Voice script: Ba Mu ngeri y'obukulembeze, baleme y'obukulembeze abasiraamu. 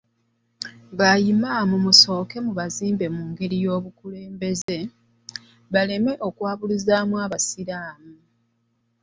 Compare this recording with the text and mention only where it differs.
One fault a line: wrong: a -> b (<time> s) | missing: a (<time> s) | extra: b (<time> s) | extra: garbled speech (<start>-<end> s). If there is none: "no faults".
extra: Imam musooke mubazimbe (1.3 s)
wrong: y'obukulembeze -> okwabuluzaamu (6.3 s)